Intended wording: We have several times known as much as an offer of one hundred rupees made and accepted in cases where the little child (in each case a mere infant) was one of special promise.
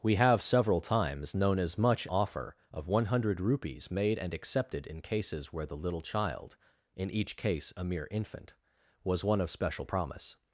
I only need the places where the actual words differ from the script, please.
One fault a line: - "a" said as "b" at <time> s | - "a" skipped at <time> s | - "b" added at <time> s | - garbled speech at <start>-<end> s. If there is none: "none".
- "as an" skipped at 2.1 s